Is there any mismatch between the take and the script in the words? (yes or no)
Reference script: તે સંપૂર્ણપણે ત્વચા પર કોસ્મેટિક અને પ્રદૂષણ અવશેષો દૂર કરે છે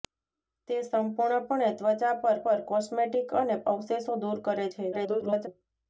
yes